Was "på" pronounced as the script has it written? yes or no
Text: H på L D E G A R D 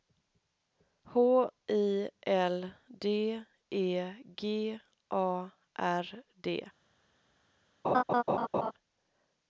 no